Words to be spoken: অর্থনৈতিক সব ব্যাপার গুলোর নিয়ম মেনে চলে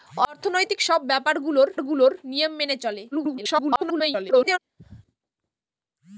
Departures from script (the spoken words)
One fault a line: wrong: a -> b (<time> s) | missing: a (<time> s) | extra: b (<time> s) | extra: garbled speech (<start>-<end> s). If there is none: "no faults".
extra: গুলোর (1.8 s)
extra: garbled speech (3.1-4.6 s)